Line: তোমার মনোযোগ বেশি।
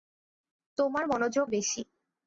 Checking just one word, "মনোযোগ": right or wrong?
right